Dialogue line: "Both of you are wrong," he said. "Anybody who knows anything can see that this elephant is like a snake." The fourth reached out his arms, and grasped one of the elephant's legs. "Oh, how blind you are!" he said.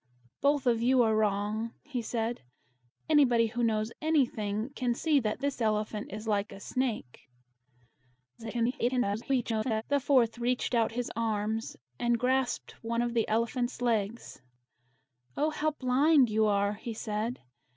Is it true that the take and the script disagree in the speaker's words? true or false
true